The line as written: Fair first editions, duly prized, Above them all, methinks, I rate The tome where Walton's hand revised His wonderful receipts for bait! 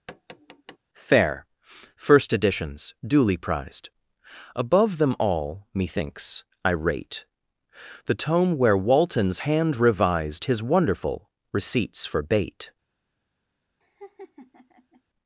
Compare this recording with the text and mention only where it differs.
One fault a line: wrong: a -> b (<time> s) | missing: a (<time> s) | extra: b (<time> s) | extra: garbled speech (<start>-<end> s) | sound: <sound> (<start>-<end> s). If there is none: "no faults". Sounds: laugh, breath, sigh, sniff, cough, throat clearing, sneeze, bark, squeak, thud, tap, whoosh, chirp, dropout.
sound: tap (0.1-0.8 s)
sound: laugh (13.8-15.0 s)